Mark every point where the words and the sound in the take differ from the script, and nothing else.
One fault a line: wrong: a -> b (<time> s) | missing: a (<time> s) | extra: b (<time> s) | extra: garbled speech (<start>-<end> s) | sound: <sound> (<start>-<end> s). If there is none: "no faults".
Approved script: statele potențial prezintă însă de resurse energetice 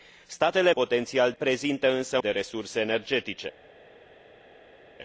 no faults